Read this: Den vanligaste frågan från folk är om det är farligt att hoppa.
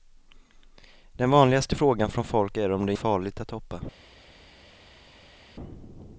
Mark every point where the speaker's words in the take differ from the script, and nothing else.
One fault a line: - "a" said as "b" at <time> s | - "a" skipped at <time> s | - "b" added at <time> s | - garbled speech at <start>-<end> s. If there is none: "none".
none